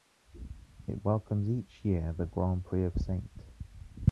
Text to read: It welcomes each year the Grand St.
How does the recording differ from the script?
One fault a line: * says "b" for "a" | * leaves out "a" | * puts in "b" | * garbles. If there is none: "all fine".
* puts in "Prix of"